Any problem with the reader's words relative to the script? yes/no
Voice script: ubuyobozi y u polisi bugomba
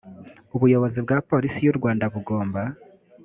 yes